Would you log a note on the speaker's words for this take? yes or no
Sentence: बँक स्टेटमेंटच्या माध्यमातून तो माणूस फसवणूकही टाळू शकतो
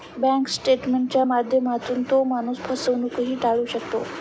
no